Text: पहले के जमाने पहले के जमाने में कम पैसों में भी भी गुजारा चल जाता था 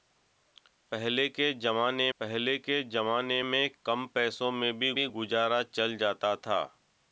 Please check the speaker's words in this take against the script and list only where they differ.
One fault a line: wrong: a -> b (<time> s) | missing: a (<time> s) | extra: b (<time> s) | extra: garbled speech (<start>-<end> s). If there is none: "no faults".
no faults